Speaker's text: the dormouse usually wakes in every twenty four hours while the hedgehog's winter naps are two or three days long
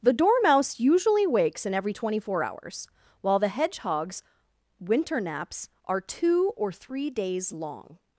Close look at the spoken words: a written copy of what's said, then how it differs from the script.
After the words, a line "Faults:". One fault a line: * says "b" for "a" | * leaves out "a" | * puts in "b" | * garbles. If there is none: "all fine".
the dormouse usually wakes in every twenty four hours while the hedgehog's winter naps are two or three days long
Faults:
all fine